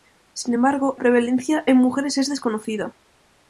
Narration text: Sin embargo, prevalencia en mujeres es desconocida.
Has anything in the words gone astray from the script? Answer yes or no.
no